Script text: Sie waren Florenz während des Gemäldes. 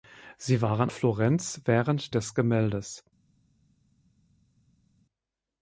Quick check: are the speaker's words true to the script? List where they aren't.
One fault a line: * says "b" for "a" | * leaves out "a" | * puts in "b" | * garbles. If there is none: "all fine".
all fine